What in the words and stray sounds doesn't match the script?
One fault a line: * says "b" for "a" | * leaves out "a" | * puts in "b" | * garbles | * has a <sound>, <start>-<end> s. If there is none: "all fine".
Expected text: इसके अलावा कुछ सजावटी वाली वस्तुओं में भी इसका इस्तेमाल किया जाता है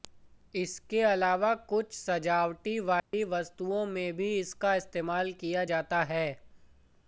* has a dropout, 3.0-3.1 s